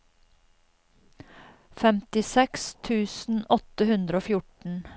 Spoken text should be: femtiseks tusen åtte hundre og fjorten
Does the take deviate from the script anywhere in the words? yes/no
no